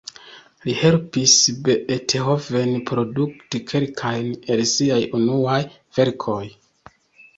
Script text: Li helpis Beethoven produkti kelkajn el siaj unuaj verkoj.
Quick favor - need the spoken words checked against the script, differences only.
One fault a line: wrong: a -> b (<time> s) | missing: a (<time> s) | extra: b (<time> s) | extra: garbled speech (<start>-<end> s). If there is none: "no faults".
no faults